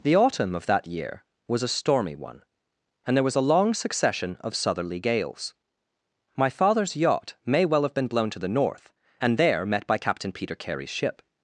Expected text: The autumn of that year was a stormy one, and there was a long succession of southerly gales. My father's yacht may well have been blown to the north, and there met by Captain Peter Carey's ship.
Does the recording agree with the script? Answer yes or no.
yes